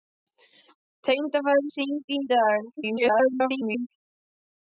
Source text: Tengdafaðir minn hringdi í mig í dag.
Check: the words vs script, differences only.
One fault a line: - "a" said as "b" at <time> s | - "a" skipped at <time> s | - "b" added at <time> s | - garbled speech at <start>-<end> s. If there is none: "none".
- "minn" skipped at 1.7 s
- "mig" skipped at 2.2 s
- garbled speech at 2.8-3.9 s